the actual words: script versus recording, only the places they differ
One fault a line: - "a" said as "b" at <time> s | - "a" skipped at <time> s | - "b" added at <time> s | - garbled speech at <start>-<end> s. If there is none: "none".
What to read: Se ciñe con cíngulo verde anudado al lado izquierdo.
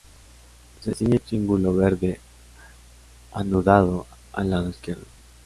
- "con" skipped at 1.2 s